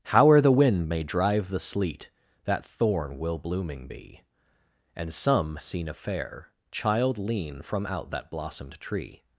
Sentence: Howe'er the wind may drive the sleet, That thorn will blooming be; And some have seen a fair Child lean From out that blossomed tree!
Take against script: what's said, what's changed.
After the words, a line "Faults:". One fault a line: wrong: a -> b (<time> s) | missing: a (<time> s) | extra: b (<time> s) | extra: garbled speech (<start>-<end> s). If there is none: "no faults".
Howe'er the wind may drive the sleet, That thorn will blooming be; And some seen a fair Child lean From out that blossomed tree!
Faults:
missing: have (5.6 s)